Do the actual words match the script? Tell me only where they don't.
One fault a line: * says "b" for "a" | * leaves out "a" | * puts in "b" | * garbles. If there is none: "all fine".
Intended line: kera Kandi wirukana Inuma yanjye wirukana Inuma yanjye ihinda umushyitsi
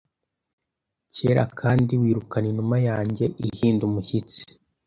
* leaves out "wirukana Inuma yanjye"